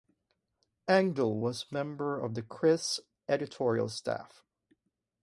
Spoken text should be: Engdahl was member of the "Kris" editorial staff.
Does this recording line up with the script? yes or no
yes